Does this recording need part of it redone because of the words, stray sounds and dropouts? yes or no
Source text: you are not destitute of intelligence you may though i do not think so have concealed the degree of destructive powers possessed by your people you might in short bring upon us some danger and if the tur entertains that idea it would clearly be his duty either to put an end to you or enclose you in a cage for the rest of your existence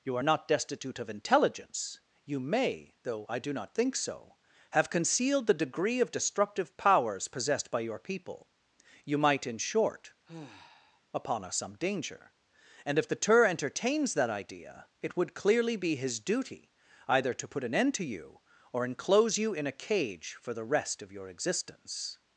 yes